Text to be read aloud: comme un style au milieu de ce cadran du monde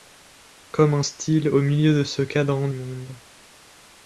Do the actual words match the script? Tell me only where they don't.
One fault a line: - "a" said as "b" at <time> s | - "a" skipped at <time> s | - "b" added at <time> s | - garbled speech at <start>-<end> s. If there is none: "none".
- "du" skipped at 2.7 s